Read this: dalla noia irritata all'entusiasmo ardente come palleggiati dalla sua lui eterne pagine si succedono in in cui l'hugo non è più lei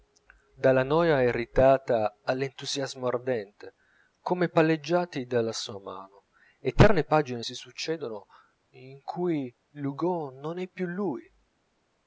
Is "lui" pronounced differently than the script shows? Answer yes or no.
yes